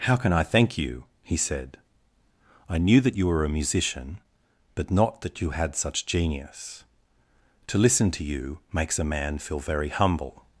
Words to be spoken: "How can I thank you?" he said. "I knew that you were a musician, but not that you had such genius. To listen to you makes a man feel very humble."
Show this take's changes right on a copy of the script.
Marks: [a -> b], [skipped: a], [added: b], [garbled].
"How can I thank you?" he said. "I knew that you were a musician, but not that you had such genius. To listen to you makes a man feel very humble."